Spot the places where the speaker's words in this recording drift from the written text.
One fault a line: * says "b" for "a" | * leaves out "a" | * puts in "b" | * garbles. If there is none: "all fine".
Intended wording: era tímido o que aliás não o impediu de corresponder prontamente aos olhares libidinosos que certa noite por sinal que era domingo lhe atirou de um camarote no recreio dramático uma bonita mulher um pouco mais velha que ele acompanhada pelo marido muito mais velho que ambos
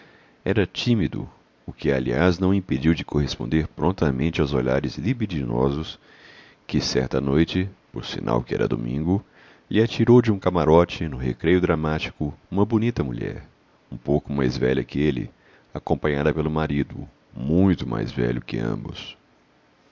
all fine